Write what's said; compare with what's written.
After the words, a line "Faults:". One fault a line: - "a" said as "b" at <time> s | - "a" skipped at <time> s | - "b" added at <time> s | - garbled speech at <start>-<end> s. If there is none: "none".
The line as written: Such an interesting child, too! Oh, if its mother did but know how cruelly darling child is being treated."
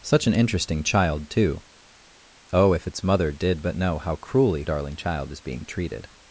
Such an interesting child, too! Oh, if its mother did but know how cruelly darling child is being treated."
Faults:
none